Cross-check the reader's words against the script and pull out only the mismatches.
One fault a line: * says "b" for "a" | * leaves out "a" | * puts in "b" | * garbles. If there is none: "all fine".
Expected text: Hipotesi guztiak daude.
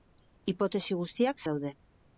all fine